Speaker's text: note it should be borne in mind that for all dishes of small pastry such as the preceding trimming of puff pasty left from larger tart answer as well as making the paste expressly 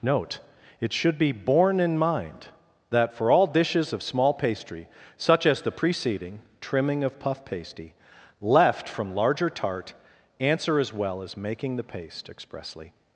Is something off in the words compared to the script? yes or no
no